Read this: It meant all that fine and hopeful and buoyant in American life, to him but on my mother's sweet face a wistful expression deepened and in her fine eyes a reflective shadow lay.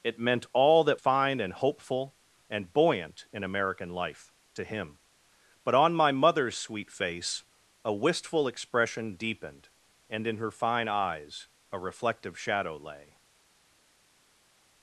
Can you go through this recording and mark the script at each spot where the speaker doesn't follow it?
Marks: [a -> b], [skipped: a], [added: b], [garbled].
It meant all that fine and hopeful and buoyant in American life, to him but on my mother's sweet face a wistful expression deepened and in her fine eyes a reflective shadow lay.